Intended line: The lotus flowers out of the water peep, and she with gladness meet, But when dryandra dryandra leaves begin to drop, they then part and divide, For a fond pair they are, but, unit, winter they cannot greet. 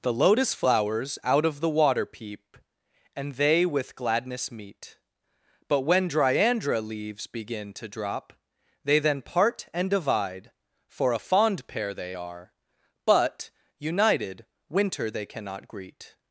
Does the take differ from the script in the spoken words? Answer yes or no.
yes